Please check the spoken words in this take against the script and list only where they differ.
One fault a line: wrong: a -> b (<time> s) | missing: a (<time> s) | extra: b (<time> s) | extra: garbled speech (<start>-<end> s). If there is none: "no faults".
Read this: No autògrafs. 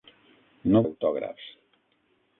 no faults